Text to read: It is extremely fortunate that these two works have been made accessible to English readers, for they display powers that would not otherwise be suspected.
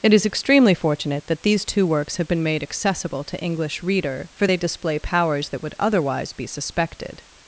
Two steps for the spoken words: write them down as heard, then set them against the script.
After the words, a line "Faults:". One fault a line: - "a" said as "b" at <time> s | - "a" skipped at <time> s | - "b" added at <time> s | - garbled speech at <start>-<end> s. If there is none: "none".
It is extremely fortunate that these two works have been made accessible to English reader, for they display powers that would otherwise be suspected.
Faults:
- "readers" said as "reader" at 3.8 s
- "not" skipped at 5.7 s